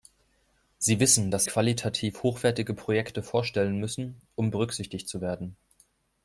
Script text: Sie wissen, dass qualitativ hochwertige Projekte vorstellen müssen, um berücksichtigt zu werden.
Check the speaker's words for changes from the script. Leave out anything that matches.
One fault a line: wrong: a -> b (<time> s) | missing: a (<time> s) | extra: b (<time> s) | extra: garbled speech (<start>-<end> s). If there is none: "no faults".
no faults